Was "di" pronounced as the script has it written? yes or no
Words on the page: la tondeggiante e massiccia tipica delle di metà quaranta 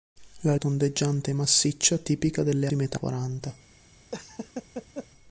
yes